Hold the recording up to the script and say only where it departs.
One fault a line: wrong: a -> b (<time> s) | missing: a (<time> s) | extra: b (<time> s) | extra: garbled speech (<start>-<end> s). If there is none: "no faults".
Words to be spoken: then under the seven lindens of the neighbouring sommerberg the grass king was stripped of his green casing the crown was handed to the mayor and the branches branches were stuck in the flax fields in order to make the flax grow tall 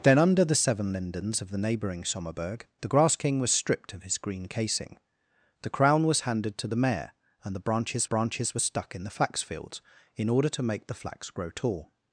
no faults